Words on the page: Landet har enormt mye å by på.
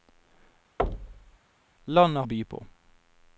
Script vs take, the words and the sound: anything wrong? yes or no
yes